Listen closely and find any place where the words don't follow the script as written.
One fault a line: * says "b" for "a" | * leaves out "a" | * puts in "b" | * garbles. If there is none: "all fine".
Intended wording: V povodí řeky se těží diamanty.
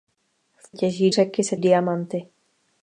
* says "těží" for "povodí"
* leaves out "těží"